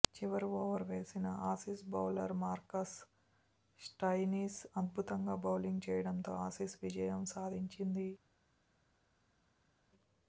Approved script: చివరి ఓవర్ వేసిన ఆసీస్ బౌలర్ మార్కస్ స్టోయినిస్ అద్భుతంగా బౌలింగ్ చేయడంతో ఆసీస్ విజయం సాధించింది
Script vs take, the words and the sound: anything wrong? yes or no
no